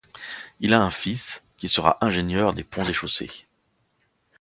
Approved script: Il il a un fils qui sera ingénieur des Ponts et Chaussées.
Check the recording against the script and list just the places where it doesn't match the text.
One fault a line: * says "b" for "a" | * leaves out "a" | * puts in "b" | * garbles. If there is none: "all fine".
* leaves out "il"